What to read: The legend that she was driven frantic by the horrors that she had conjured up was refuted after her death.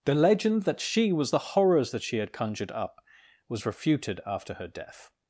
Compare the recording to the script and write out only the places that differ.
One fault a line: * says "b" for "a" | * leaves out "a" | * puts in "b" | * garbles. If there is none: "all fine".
* leaves out "driven frantic by"